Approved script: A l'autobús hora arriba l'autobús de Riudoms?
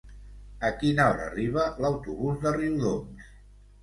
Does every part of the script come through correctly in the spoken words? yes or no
no